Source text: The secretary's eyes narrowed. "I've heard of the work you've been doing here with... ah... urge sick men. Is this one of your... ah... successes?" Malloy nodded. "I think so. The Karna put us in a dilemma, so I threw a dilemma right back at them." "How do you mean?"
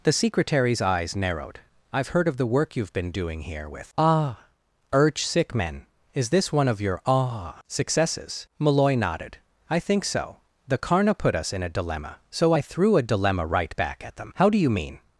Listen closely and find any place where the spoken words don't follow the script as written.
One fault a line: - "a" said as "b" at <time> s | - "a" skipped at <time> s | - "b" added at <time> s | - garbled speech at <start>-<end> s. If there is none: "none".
none